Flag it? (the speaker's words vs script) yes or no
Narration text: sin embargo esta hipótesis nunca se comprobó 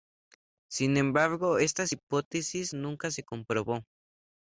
no